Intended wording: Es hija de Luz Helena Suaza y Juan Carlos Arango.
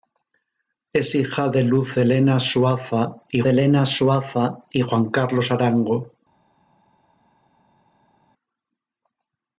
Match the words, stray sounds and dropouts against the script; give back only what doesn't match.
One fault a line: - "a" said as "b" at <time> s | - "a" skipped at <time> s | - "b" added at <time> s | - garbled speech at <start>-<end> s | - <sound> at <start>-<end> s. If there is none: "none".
- "Helena Suaza y" added at 3.4 s